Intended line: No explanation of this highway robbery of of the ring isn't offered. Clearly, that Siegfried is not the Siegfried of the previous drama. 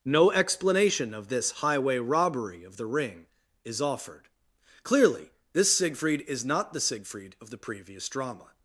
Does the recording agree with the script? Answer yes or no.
no